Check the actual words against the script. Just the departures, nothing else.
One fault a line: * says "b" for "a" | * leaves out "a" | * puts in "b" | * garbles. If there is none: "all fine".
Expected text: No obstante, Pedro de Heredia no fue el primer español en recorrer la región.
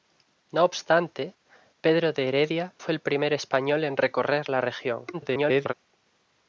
* leaves out "no"
* garbles